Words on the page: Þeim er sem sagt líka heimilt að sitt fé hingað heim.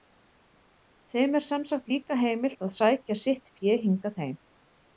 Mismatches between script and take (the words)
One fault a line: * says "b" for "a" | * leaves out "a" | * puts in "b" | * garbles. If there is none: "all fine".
* puts in "sækja"